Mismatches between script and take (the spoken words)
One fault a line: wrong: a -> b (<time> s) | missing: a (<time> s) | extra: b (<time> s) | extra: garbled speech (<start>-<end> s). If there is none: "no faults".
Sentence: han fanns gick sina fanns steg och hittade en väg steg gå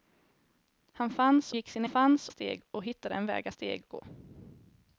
no faults